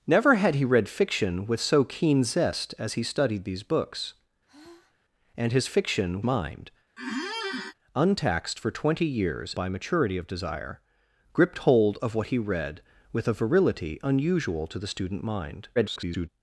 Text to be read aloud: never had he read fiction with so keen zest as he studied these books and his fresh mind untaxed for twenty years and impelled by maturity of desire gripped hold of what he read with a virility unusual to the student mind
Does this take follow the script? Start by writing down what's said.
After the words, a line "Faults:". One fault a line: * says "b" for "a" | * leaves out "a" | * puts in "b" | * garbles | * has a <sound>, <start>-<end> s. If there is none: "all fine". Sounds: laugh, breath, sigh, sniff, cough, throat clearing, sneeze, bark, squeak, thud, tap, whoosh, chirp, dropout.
never had he read fiction with so keen zest as he studied these books and his fiction mind untaxed for twenty years by maturity of desire gripped hold of what he read with a virility unusual to the student mind [garbled]
Faults:
* has a sigh, 4.5-5.0 s
* says "fiction" for "fresh"
* has a squeak, 7.0-7.7 s
* leaves out "and impelled"
* garbles